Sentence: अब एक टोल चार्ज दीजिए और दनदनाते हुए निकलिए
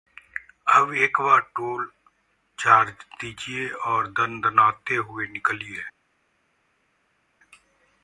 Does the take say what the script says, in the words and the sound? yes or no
no